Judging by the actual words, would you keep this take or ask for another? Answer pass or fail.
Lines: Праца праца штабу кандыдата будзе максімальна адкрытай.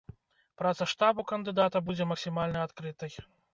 fail